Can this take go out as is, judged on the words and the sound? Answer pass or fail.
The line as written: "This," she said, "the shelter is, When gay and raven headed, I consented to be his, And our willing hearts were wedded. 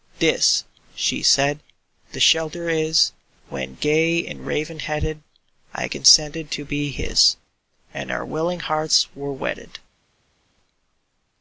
pass